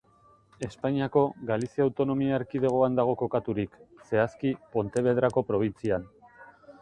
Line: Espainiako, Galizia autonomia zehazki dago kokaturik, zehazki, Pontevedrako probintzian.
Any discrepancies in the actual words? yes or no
yes